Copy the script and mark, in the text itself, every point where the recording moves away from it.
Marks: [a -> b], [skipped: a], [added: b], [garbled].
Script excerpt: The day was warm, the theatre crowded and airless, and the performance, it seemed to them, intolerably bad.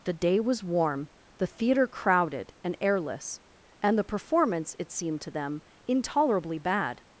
The day was warm, the theatre crowded and airless, and the performance, it seemed to them, intolerably bad.